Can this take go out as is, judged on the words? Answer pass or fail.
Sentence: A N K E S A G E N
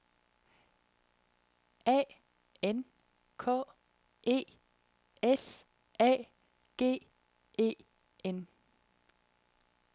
pass